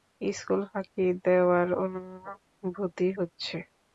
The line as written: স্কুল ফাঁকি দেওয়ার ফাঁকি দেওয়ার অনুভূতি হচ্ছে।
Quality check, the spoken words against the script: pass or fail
fail